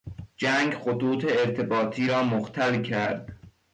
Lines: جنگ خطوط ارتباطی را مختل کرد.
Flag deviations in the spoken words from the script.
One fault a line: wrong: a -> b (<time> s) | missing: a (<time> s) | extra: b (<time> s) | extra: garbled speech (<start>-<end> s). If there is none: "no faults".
no faults